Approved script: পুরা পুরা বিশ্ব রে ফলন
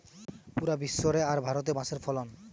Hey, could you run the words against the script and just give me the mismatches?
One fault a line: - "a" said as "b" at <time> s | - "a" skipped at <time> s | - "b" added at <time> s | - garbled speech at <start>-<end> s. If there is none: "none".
- "পুরা" skipped at 0.8 s
- "আর ভারতে বাঁশের" added at 1.2 s